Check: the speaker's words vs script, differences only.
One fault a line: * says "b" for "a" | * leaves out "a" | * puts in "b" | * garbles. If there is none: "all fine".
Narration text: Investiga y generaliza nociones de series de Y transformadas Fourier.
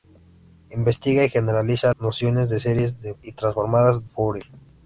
all fine